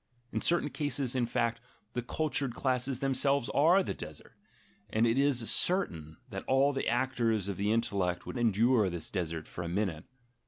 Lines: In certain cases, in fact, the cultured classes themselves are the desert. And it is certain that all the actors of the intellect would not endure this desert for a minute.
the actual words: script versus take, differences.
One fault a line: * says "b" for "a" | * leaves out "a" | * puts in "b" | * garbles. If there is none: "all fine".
* leaves out "not"